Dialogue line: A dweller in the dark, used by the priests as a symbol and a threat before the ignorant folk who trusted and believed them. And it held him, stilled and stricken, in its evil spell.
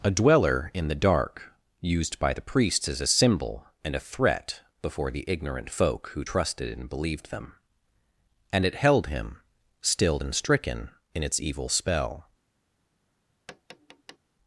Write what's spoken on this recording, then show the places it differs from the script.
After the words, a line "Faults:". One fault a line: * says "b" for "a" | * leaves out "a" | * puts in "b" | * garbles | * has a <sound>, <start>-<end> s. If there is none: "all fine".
A dweller in the dark, used by the priests as a symbol and a threat before the ignorant folk who trusted and believed them. And it held him, stilled and stricken, in its evil spell.
Faults:
* has a tap, 13.5-14.2 s